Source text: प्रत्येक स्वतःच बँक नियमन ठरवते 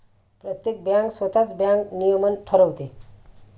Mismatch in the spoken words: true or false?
true